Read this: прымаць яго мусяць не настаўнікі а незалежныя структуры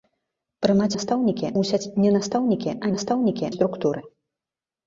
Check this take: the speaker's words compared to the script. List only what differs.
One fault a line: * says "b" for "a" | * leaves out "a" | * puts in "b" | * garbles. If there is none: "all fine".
* says "настаўнікі" for "яго"
* says "настаўнікі" for "незалежныя"